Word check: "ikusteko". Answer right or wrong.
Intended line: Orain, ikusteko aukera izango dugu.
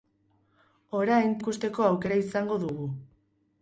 right